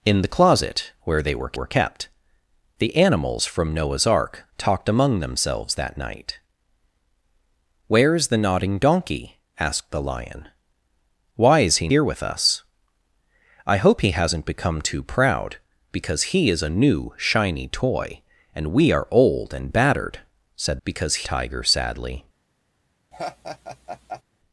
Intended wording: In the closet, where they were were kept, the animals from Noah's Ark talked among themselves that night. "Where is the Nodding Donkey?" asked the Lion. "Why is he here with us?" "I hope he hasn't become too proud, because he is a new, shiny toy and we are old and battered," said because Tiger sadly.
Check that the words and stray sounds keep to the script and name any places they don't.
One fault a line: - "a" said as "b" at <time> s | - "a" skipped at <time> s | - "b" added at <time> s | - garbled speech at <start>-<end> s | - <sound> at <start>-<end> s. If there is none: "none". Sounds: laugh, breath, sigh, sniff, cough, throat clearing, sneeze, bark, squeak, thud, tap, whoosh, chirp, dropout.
- laugh at 23.1-24.2 s